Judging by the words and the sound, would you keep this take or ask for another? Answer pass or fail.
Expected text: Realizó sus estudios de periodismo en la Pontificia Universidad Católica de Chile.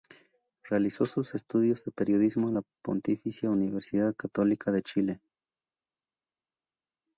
pass